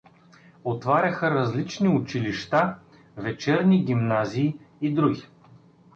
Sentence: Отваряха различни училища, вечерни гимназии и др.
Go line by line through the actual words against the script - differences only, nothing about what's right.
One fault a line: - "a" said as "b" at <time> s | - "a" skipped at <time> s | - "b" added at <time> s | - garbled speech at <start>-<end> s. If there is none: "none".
none